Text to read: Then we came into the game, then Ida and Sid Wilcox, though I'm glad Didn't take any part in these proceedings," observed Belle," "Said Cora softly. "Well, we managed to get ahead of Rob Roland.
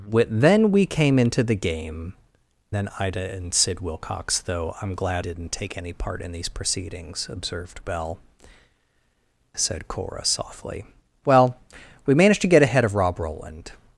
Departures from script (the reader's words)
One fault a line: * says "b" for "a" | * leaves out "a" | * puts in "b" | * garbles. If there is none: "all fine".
all fine